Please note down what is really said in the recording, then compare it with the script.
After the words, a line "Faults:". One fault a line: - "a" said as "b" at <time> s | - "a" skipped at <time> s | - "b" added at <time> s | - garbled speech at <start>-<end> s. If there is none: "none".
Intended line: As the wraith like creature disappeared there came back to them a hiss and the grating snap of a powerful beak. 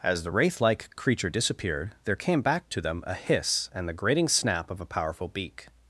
As the wraith like creature disappeared there came back to them a hiss and the grating snap of a powerful beak.
Faults:
none